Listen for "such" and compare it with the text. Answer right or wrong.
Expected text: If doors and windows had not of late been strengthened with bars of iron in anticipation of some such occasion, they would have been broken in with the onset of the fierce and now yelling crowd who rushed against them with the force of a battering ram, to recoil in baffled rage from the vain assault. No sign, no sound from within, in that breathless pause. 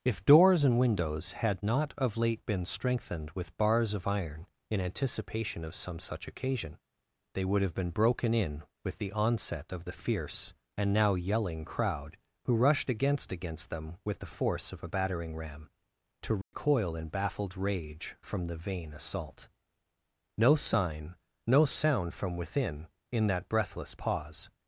right